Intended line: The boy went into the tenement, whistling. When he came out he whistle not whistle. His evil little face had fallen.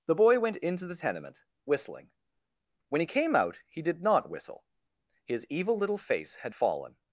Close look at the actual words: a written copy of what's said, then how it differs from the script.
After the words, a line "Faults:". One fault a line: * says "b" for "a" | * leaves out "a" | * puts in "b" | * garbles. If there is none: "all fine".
The boy went into the tenement, whistling. When he came out he did not whistle. His evil little face had fallen.
Faults:
* says "did" for "whistle"